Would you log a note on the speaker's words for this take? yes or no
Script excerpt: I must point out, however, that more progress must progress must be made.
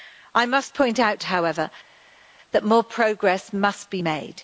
yes